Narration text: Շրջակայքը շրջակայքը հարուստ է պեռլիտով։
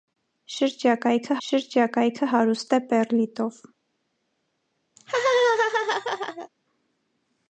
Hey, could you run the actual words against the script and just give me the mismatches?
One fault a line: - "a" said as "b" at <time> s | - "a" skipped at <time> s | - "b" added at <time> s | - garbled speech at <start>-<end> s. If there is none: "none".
none